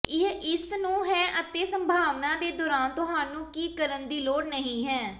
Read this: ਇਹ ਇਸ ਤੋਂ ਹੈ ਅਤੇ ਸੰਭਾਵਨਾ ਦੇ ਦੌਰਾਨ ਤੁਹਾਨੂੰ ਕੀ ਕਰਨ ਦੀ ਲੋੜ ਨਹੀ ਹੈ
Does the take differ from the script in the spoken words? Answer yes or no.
yes